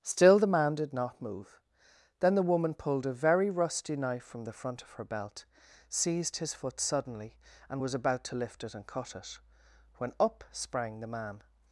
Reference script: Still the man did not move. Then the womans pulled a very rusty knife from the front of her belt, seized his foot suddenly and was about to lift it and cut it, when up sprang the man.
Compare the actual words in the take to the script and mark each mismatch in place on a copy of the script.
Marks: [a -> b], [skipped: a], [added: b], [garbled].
Still the man did not move. Then the [womans -> woman] pulled a very rusty knife from the front of her belt, seized his foot suddenly and was about to lift it and cut it, when up sprang the man.